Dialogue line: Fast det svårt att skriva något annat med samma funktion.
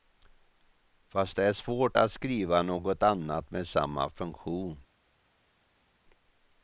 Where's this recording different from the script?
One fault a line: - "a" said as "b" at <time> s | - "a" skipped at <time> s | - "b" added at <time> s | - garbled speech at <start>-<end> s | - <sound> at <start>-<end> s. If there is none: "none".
- "är" added at 1.4 s